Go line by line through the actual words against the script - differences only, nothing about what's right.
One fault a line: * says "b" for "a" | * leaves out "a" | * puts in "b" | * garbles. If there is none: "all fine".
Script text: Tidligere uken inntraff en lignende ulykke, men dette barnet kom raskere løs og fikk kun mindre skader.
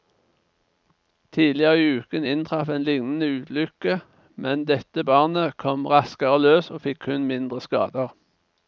* puts in "i"